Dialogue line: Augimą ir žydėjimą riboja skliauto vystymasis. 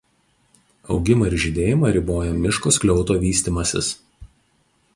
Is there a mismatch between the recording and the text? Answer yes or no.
yes